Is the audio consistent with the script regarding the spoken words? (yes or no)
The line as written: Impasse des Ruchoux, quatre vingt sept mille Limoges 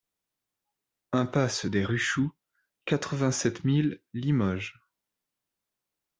yes